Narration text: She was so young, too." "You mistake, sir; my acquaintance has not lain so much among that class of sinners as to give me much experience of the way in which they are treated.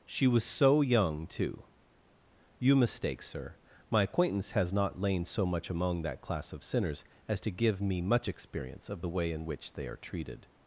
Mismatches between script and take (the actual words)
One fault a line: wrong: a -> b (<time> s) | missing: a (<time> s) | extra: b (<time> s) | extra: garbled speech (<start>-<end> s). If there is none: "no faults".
no faults